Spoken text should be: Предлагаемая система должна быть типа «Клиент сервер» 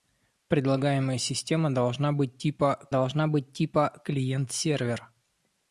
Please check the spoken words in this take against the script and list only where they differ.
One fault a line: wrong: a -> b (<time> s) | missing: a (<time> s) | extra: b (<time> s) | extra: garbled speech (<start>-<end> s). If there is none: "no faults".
extra: должна быть типа (2.9 s)